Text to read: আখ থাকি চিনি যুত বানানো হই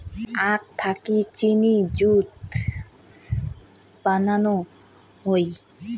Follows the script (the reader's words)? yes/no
yes